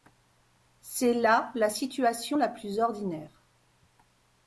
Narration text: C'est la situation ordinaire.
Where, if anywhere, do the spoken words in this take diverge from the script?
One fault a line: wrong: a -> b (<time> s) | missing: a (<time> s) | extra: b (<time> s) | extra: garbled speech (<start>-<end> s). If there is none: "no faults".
extra: là (1.1 s)
extra: la plus (2.4 s)